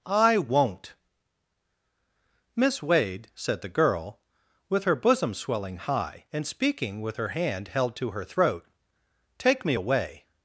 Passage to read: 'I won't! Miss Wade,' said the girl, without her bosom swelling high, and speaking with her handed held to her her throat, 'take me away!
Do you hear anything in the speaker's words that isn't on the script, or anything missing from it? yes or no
yes